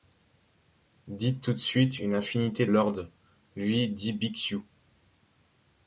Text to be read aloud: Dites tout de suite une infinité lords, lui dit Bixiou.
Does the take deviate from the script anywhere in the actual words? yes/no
no